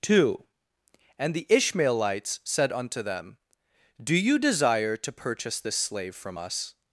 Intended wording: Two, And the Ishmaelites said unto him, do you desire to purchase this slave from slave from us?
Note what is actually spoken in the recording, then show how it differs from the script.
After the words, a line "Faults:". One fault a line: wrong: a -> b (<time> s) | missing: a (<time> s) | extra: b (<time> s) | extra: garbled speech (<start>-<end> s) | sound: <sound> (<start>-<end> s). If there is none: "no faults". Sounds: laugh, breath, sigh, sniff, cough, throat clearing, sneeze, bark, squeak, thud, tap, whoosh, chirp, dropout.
Two, And the Ishmaelites said unto them, do you desire to purchase this slave from us?
Faults:
wrong: him -> them (3.0 s)
missing: slave from (6.4 s)